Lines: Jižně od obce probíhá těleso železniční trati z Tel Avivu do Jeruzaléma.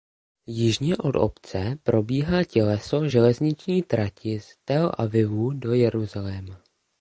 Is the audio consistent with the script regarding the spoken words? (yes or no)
yes